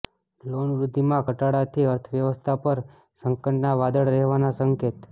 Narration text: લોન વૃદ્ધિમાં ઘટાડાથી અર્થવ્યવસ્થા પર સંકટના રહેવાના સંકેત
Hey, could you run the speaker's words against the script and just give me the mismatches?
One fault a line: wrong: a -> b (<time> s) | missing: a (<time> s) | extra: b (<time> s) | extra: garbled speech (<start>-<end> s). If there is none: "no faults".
extra: વાદળ (3.8 s)